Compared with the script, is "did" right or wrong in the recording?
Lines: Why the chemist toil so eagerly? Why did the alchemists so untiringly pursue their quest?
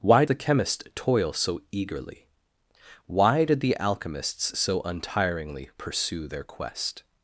right